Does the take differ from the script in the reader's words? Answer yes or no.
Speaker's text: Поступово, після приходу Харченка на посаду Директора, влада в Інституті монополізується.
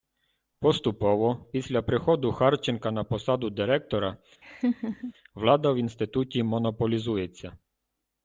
no